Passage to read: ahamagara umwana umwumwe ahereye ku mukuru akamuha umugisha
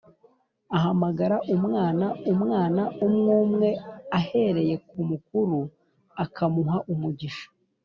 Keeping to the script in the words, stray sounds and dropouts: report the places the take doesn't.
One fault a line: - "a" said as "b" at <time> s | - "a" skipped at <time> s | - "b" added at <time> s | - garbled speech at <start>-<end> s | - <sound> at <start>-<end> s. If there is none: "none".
- "umwana" added at 2.3 s